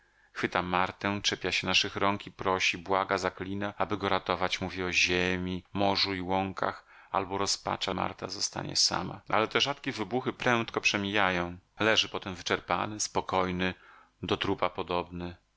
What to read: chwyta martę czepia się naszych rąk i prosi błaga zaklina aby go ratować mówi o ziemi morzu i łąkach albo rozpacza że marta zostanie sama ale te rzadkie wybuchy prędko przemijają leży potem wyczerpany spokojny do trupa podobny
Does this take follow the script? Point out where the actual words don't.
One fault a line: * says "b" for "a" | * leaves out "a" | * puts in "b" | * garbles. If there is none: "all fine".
* leaves out "że"